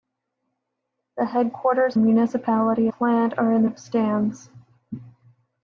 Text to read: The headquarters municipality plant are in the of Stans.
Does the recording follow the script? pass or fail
pass